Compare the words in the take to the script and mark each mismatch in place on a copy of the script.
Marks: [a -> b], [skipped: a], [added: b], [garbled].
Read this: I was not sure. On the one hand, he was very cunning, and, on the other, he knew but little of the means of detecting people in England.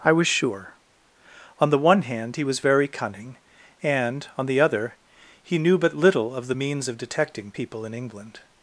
I was [skipped: not] sure. On the one hand, he was very cunning, and, on the other, he knew but little of the means of detecting people in England.